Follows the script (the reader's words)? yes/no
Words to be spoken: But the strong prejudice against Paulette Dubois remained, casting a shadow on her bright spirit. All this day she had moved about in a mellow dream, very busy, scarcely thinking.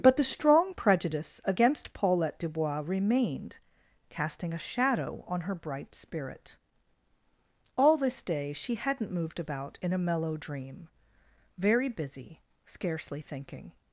no